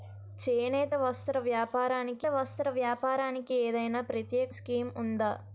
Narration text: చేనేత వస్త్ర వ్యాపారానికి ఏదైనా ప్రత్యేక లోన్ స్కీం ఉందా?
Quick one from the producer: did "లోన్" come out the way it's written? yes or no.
no